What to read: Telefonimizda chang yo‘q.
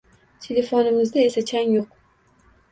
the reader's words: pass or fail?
fail